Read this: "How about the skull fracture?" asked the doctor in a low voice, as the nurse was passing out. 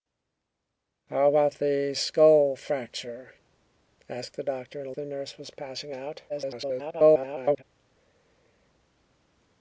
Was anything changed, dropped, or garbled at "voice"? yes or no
yes